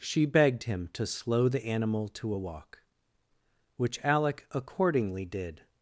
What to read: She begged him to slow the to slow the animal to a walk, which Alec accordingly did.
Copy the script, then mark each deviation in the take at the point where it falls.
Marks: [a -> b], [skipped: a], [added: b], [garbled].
She begged him to slow the [skipped: to slow the] animal to a walk, which Alec accordingly did.